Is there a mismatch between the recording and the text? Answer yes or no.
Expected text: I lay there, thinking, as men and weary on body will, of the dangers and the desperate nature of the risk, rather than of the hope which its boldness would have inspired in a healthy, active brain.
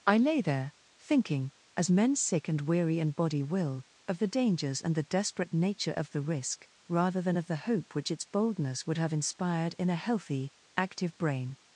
yes